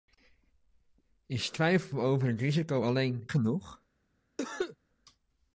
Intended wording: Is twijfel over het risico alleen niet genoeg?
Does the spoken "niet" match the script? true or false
false